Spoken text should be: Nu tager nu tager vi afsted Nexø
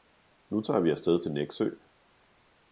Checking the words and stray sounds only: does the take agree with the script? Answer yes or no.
no